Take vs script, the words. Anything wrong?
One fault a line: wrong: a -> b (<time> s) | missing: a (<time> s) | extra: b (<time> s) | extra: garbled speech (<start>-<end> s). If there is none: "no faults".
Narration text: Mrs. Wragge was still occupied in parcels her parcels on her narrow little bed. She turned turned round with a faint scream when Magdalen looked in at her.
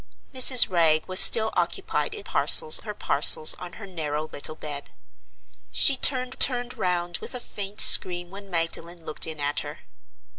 no faults